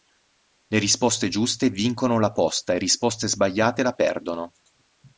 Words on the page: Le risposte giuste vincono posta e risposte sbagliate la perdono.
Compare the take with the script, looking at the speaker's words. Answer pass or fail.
fail